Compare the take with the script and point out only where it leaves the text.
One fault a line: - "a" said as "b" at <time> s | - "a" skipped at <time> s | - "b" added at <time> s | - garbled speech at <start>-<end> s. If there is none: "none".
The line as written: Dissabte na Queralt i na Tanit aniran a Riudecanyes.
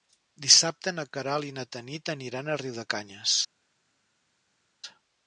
none